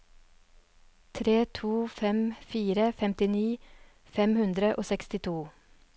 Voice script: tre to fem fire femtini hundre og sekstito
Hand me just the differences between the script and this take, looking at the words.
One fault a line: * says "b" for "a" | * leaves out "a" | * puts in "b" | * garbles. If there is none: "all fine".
* puts in "fem"